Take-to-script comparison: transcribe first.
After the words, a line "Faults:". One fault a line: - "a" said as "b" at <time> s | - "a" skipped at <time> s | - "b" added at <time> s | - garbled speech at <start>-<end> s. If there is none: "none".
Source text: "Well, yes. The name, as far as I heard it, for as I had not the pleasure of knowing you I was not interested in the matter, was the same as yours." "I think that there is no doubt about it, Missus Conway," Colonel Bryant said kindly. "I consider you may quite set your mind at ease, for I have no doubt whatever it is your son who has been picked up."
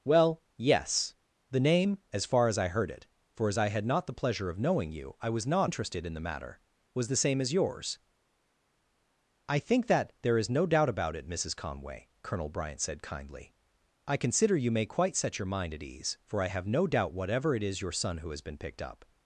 "Well, yes. The name, as far as I heard it, for as I had not the pleasure of knowing you I was not interested in the matter, was the same as yours." "I think that there is no doubt about it, Missus Conway," Colonel Bryant said kindly. "I consider you may quite set your mind at ease, for I have no doubt whatever it is your son who has been picked up."
Faults:
none